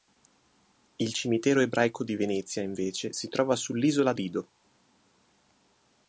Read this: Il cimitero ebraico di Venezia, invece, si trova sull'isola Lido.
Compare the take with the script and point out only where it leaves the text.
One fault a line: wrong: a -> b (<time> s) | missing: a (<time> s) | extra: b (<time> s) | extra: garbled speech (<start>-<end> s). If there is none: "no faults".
no faults